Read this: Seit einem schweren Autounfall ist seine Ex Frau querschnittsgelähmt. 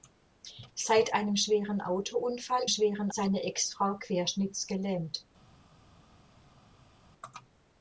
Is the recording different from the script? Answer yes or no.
yes